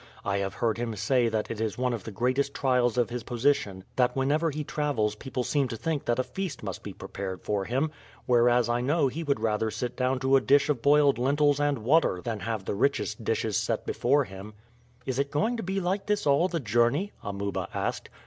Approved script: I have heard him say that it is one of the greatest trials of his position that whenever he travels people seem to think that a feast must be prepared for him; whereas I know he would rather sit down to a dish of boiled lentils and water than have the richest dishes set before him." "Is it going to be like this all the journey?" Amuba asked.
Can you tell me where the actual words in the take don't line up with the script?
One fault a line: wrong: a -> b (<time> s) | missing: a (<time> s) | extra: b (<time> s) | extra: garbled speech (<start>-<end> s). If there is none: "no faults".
no faults